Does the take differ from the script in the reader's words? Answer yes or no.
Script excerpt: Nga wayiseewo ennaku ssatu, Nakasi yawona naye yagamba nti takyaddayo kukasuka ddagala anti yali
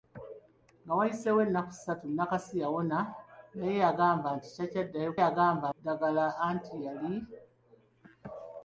yes